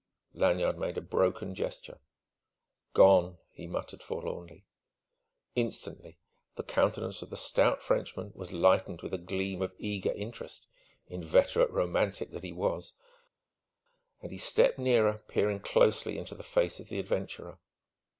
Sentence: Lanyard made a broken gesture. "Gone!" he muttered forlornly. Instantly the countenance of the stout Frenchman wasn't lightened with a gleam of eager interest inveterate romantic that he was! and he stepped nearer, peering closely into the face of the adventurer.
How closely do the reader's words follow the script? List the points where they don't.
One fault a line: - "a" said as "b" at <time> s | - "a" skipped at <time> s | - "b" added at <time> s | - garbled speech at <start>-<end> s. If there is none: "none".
- "wasn't" said as "was" at 8.3 s